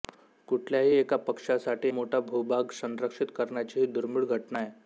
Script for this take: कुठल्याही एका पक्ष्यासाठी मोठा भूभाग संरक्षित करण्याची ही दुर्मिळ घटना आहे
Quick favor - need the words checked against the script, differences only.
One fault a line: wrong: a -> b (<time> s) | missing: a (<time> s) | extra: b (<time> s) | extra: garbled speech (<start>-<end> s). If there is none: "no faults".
no faults